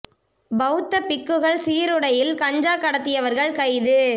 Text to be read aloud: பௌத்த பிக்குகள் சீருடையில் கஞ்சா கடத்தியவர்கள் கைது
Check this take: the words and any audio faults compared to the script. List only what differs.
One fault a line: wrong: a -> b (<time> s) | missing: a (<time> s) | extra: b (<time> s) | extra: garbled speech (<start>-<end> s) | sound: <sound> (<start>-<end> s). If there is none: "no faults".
no faults